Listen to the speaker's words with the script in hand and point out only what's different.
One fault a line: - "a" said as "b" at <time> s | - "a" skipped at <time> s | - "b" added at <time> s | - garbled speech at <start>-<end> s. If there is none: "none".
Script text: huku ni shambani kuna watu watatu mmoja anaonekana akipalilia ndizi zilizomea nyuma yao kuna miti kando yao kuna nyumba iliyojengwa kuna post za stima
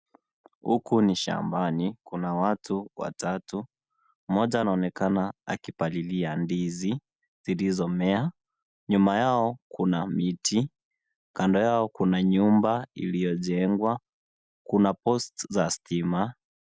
none